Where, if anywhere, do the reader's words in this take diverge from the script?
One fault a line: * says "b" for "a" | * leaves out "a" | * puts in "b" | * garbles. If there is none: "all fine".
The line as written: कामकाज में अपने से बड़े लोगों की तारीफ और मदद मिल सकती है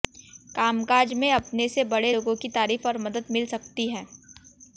all fine